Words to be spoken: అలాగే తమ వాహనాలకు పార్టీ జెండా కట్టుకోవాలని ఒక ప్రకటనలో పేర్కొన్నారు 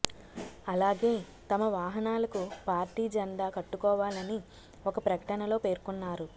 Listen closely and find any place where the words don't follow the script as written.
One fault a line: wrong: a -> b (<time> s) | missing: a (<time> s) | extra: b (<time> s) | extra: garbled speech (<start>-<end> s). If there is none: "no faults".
no faults